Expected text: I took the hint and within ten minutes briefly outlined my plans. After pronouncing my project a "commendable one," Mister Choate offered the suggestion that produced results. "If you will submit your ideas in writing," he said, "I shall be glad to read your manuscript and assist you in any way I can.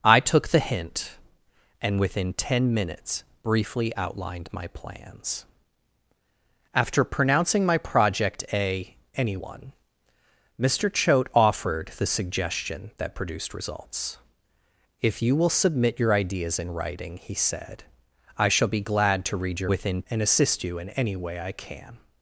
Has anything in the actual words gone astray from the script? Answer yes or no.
yes